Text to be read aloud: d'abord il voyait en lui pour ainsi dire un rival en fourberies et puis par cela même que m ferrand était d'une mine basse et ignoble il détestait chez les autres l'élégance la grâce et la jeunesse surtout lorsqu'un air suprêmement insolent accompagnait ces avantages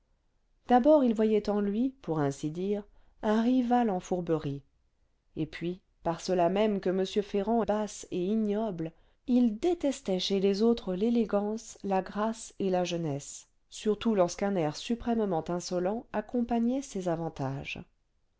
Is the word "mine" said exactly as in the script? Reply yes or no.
no